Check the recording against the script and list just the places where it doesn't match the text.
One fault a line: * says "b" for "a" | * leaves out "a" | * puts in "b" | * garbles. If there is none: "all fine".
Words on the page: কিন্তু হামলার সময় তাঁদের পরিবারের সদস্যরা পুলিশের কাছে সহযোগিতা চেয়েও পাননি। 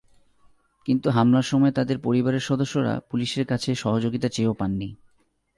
all fine